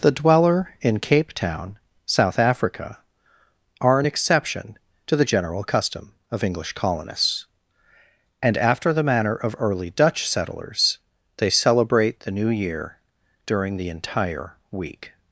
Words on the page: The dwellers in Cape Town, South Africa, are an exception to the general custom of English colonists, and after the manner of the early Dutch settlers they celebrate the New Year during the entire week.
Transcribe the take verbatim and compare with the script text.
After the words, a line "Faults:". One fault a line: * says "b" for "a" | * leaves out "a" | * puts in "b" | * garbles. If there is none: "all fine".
The dweller in Cape Town, South Africa, are an exception to the general custom of English colonists, and after the manner of early Dutch settlers they celebrate the New Year during the entire week.
Faults:
* says "dweller" for "dwellers"
* leaves out "the"